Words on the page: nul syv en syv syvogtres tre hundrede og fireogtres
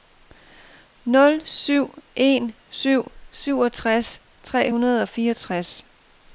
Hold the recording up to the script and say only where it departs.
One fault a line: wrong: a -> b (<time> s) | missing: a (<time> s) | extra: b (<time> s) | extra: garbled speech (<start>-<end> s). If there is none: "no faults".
no faults